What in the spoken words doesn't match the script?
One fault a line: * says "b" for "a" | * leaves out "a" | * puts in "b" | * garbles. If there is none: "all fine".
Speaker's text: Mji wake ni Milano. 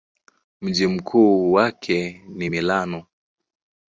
* puts in "mkuu"